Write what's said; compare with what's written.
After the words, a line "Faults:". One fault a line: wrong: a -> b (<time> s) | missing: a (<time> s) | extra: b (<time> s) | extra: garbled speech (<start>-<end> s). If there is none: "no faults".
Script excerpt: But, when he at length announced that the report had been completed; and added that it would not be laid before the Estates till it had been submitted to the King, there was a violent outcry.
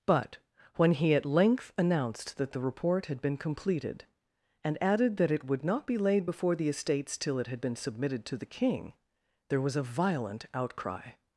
But, when he at length announced that the report had been completed; and added that it would not be laid before the Estates till it had been submitted to the King, there was a violent outcry.
Faults:
no faults